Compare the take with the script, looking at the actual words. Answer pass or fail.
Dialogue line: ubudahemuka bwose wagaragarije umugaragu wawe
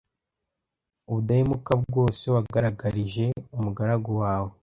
pass